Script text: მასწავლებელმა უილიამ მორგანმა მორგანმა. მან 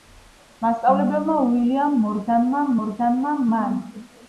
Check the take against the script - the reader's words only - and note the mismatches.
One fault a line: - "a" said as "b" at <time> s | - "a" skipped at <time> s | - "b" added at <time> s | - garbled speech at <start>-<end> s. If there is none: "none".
none